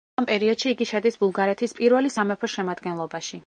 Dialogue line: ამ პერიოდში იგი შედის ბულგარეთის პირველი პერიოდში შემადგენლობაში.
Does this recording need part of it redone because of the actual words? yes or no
yes